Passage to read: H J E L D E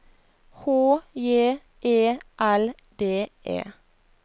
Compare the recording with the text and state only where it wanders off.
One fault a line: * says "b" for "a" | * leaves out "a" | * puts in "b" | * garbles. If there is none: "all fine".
all fine